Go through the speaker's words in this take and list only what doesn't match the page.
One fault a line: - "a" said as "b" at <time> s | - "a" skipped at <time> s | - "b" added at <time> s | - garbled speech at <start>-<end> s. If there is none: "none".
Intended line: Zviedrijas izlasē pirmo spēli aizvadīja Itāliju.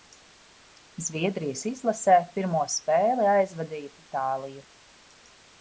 none